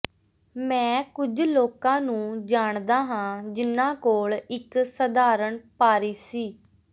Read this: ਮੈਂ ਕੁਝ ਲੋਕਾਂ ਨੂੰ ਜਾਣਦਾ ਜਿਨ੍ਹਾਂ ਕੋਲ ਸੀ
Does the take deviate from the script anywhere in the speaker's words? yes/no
yes